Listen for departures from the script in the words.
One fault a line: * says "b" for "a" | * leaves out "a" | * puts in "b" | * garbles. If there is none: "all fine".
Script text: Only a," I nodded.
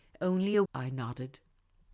all fine